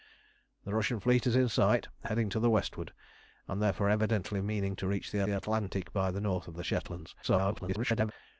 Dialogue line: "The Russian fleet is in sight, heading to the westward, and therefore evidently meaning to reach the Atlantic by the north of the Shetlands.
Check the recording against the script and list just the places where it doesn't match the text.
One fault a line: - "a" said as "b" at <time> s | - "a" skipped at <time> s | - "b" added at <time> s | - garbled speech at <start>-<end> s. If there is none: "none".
- "the" added at 5.2 s
- garbled speech at 7.2-8.1 s